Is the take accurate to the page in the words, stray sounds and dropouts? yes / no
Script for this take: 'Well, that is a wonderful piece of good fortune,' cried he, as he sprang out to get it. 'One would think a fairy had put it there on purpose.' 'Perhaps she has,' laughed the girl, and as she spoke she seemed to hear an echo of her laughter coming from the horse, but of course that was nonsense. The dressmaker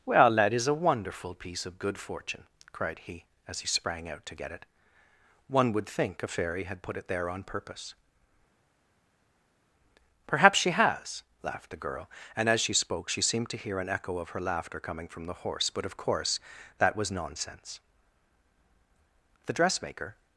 yes